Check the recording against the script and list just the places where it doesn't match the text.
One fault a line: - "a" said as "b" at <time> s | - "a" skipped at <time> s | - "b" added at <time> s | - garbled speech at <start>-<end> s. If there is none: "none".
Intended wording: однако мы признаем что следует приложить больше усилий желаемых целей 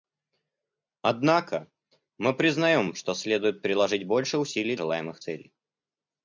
none